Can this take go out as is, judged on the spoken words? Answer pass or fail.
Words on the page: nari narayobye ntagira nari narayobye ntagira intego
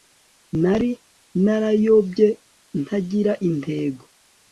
fail